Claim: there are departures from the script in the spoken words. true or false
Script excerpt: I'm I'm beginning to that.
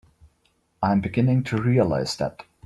true